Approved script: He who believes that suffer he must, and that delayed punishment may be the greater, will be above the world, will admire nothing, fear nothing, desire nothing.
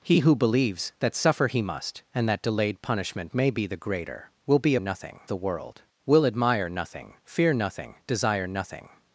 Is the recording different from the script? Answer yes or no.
yes